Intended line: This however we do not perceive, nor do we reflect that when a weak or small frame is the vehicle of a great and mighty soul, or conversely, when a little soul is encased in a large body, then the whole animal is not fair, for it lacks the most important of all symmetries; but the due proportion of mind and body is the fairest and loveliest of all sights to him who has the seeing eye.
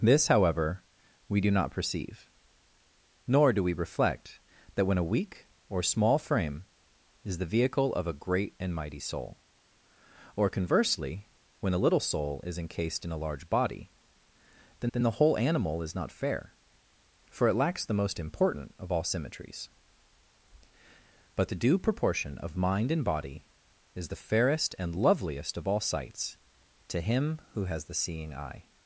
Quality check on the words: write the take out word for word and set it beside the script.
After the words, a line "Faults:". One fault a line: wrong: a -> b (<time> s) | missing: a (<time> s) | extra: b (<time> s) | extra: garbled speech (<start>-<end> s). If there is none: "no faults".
This however we do not perceive, nor do we reflect that when a weak or small frame is the vehicle of a great and mighty soul, or conversely, when a little soul is encased in a large body, then then the whole animal is not fair, for it lacks the most important of all symmetries; but the due proportion of mind and body is the fairest and loveliest of all sights to him who has the seeing eye.
Faults:
extra: then (14.9 s)